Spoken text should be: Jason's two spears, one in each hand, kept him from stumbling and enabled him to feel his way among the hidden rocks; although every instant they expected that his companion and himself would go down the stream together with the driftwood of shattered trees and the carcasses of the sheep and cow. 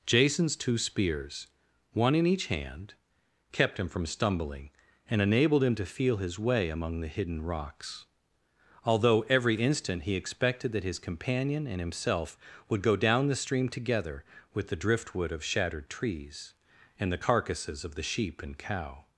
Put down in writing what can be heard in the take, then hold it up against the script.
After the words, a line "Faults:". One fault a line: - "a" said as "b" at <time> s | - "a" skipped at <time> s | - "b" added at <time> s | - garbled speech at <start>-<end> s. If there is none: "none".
Jason's two spears, one in each hand, kept him from stumbling and enabled him to feel his way among the hidden rocks; although every instant he expected that his companion and himself would go down the stream together with the driftwood of shattered trees and the carcasses of the sheep and cow.
Faults:
- "they" said as "he" at 10.0 s